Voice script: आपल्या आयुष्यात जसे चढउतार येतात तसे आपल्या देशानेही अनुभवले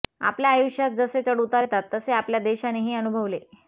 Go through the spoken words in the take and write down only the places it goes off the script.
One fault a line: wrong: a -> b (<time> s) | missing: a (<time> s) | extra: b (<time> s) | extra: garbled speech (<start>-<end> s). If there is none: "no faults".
no faults